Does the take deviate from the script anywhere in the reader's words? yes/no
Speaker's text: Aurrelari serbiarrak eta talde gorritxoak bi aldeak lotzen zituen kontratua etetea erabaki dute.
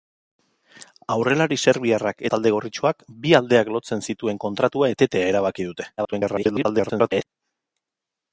yes